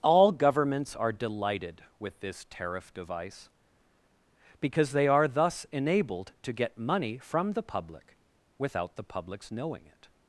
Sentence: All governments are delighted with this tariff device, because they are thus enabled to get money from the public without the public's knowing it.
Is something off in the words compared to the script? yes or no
no